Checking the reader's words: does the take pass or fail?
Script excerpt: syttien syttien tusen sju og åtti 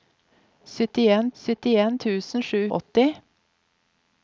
pass